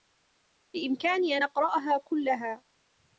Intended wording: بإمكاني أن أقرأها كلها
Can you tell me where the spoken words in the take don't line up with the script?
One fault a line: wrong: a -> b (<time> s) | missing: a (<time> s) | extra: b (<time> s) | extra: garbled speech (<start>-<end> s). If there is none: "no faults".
no faults